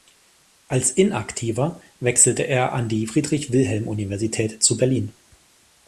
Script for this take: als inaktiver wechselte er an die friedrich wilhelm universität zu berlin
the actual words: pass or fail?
pass